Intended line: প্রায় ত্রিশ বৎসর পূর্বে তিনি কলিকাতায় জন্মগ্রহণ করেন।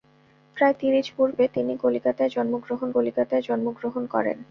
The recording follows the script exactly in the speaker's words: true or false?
false